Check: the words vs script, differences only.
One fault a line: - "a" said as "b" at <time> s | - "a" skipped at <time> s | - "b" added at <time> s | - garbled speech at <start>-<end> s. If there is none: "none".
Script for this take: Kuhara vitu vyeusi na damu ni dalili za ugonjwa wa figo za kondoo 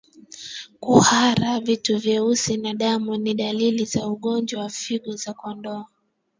none